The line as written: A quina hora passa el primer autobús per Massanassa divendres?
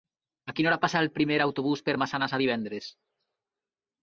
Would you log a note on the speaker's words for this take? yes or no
no